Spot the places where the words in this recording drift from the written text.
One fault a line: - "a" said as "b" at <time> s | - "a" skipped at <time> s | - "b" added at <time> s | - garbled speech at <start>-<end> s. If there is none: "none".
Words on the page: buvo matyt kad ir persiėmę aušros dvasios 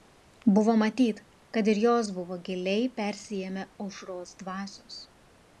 - "jos buvo giliai" added at 1.9 s